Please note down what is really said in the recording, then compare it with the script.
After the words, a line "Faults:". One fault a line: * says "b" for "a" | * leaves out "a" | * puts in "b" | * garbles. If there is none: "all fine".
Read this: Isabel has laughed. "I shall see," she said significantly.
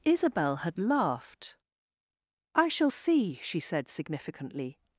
Isabel had laughed. "I shall see," she said significantly.
Faults:
* says "had" for "has"